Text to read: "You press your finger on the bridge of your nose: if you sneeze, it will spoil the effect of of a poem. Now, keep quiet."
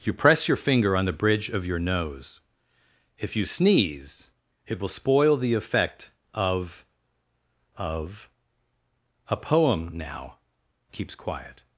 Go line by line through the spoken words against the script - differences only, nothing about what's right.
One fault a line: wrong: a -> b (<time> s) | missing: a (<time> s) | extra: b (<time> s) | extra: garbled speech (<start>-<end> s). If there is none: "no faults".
wrong: keep -> keeps (10.9 s)